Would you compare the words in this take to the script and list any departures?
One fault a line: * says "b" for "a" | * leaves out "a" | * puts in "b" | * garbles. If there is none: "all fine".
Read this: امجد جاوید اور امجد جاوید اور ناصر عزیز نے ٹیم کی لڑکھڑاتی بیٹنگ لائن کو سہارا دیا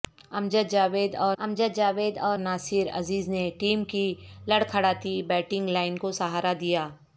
all fine